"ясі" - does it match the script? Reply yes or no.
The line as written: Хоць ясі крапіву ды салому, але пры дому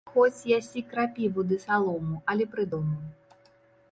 yes